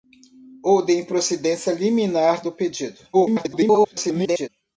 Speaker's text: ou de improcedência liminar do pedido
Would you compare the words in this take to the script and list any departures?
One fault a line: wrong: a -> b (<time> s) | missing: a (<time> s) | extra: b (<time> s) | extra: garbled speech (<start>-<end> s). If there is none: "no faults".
extra: garbled speech (3.1-4.5 s)